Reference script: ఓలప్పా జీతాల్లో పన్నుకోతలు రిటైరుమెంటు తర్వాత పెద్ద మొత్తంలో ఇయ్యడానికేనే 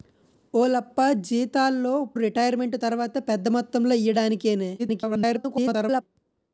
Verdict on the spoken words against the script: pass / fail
fail